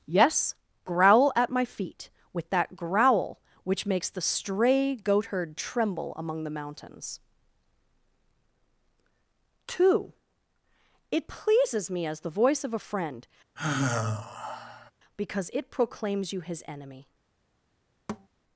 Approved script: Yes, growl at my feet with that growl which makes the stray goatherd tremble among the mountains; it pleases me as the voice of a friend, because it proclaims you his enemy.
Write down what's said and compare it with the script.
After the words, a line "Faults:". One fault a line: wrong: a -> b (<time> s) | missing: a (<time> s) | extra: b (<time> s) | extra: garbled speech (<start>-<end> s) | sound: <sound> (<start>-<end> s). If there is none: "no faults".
Yes, growl at my feet with that growl which makes the stray goatherd tremble among the mountains; two it pleases me as the voice of a friend, because it proclaims you his enemy.
Faults:
extra: two (9.7 s)
sound: sigh (13.6-14.9 s)
sound: thud (18.1-18.3 s)